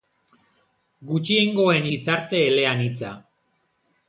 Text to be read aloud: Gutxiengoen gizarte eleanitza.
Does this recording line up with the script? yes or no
yes